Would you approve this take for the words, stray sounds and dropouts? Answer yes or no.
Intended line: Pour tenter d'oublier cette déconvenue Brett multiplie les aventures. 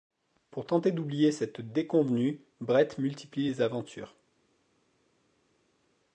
yes